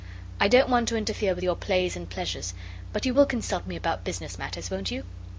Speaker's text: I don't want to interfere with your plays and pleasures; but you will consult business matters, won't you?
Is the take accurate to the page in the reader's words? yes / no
no